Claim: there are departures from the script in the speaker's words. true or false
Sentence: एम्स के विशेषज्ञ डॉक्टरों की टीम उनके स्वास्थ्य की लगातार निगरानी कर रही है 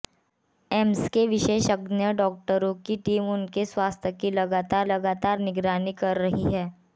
true